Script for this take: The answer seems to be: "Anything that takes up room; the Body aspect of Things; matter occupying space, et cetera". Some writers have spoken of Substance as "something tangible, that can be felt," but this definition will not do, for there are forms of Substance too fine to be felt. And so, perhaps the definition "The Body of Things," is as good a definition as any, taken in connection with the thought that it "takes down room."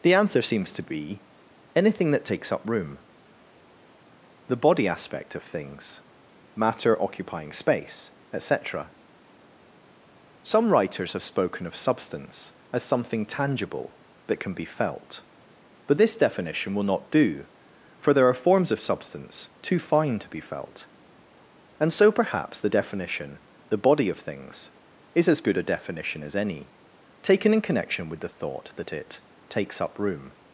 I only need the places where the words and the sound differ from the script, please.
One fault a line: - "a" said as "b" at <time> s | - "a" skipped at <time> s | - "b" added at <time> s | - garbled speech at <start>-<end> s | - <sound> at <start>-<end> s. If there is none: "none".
- "down" said as "up" at 29.8 s